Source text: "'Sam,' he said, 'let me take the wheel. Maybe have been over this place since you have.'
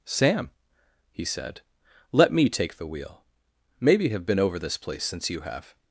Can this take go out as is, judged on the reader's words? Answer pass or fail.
pass